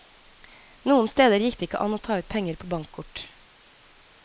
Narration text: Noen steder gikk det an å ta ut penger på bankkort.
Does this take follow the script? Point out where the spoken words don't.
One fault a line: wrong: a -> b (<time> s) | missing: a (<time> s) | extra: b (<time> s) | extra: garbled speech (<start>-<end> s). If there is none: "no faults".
extra: ikke (1.7 s)